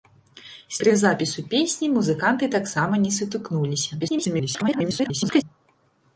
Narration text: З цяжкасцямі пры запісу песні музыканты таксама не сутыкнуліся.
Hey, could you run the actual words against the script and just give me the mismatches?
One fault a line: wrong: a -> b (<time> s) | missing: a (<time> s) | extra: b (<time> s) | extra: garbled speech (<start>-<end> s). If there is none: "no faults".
missing: цяжкасцямі (0.8 s)
extra: garbled speech (4.0-5.4 s)